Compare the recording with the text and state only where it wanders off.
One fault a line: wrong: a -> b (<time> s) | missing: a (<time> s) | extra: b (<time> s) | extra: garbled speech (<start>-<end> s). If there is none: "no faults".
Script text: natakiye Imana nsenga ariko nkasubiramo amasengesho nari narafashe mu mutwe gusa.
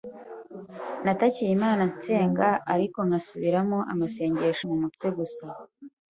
missing: nari narafashe (4.7 s)